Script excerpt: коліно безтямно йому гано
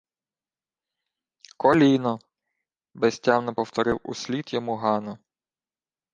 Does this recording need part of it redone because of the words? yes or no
yes